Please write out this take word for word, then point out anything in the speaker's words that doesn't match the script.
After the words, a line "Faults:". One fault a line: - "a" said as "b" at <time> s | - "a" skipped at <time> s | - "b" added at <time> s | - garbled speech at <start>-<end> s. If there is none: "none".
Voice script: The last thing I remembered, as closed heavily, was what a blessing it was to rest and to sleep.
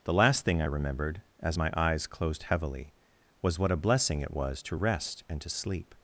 The last thing I remembered, as my eyes closed heavily, was what a blessing it was to rest and to sleep.
Faults:
- "my eyes" added at 1.6 s